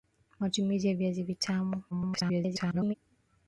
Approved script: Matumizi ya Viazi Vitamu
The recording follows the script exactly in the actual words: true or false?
false